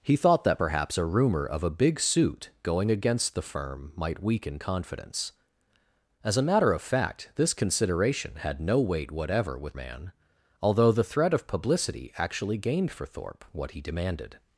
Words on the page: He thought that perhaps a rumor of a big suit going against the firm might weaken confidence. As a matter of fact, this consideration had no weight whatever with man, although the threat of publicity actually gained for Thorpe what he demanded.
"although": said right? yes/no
yes